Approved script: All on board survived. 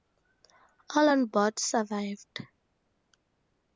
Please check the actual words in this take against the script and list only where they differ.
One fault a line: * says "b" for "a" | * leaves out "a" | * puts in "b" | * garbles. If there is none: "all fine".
all fine